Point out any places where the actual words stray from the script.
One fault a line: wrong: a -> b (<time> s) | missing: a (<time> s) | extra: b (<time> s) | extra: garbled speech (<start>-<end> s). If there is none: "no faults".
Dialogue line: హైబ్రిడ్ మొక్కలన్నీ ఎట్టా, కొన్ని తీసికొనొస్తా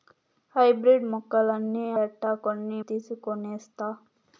no faults